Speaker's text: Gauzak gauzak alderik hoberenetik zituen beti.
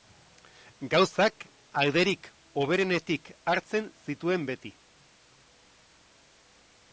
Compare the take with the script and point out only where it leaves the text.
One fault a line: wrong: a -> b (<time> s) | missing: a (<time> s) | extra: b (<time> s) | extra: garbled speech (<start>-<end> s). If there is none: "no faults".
missing: gauzak (1.4 s)
extra: hartzen (3.5 s)